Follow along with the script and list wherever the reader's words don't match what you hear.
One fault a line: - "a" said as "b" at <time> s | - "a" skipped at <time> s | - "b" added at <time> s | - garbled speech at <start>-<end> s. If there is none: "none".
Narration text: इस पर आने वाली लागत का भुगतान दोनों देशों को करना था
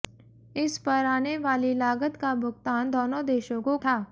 - "करना" skipped at 3.8 s